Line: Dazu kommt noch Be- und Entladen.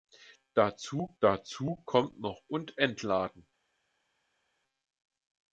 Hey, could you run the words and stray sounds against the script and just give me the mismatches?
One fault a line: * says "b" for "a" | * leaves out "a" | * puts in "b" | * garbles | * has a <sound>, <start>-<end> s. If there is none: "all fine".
* puts in "dazu"
* leaves out "Be"